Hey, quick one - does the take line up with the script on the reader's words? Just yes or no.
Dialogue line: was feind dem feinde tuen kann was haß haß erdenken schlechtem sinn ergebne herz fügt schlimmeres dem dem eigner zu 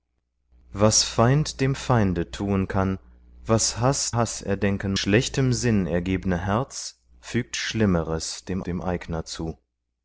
yes